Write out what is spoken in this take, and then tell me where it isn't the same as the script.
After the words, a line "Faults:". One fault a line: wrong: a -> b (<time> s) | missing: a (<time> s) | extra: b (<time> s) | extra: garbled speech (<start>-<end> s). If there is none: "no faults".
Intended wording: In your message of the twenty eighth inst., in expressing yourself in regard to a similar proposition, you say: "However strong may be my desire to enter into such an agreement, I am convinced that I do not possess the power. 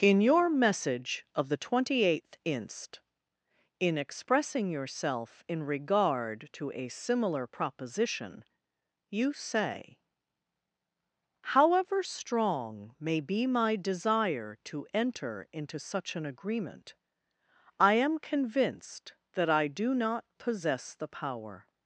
In your message of the twenty eighth inst., in expressing yourself in regard to a similar proposition, you say: "However strong may be my desire to enter into such an agreement, I am convinced that I do not possess the power.
Faults:
no faults